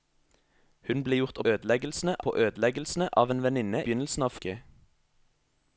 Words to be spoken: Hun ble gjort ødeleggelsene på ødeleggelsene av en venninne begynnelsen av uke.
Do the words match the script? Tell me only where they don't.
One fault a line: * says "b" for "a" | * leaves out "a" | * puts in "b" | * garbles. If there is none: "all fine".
all fine